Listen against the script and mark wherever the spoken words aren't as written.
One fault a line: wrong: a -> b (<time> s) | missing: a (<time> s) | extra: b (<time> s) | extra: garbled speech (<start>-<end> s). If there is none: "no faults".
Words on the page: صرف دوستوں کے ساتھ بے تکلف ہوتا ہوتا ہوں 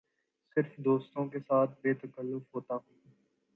missing: ہوتا (2.8 s)